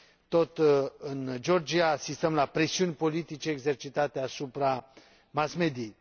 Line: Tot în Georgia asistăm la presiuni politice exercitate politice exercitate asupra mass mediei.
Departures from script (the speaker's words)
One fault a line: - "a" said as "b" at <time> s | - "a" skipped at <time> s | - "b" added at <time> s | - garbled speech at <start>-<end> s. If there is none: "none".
- "politice exercitate" skipped at 4.2 s